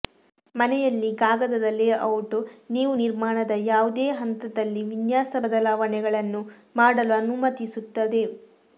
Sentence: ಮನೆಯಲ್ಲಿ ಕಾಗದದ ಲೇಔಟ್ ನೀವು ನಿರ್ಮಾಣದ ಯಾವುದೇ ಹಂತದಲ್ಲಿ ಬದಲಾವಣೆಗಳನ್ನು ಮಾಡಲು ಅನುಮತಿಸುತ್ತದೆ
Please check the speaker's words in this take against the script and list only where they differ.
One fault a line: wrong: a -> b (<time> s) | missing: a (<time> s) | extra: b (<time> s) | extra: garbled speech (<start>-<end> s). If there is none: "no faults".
extra: ವಿನ್ಯಾಸ (4.9 s)